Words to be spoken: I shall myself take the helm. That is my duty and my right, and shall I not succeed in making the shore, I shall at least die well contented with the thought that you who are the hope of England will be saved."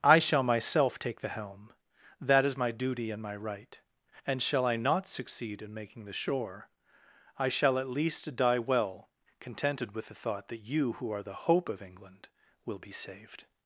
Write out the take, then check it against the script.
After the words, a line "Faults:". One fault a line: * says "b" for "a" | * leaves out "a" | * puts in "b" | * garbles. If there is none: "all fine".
I shall myself take the helm. That is my duty and my right, and shall I not succeed in making the shore, I shall at least die well contented with the thought that you who are the hope of England will be saved."
Faults:
all fine